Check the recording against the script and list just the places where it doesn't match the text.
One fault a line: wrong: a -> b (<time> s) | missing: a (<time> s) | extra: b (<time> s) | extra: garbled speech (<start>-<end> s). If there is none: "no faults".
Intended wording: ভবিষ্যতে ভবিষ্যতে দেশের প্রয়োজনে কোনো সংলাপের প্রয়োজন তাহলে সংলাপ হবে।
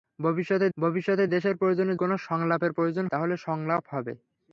no faults